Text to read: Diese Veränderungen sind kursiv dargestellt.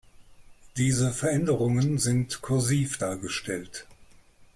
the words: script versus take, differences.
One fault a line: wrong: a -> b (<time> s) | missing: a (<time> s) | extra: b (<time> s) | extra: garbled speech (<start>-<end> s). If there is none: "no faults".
no faults